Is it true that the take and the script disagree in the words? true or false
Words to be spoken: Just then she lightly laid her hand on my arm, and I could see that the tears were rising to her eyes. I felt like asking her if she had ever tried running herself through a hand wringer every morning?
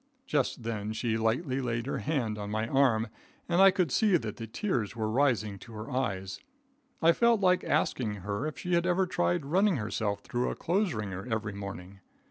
true